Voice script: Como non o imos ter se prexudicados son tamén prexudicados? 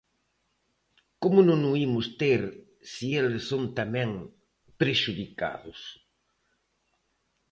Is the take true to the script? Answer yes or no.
no